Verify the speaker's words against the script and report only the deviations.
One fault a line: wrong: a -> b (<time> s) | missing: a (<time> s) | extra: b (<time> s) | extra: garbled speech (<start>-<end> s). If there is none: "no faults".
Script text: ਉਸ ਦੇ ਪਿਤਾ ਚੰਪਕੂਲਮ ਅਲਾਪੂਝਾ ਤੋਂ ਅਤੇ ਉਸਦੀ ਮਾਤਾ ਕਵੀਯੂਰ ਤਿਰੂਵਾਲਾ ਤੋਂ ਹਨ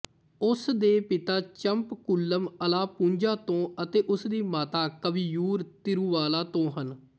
no faults